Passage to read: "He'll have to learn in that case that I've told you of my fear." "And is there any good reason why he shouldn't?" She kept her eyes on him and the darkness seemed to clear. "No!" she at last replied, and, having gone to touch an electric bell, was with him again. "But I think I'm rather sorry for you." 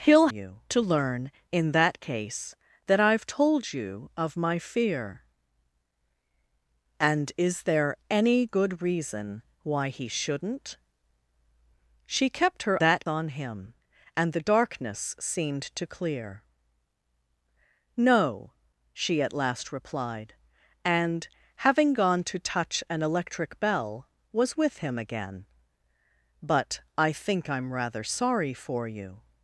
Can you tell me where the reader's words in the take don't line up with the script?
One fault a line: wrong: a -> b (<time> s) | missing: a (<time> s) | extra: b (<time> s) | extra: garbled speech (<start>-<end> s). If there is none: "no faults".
wrong: have -> you (0.3 s)
wrong: eyes -> that (12.8 s)